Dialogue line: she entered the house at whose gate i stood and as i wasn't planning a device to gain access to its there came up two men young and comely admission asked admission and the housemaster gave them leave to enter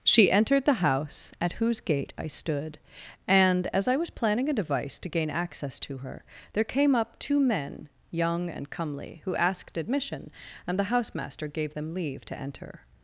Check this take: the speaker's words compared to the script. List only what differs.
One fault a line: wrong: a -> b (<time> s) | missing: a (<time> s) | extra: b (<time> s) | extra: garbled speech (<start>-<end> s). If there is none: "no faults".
wrong: wasn't -> was (4.0 s)
wrong: its -> her (6.0 s)
wrong: admission -> who (9.2 s)